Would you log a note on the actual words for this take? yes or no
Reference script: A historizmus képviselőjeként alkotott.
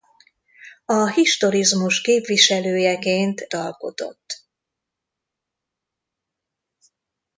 no